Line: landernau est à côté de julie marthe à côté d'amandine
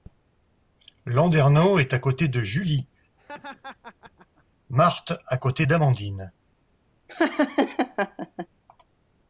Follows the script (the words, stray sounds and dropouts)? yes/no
no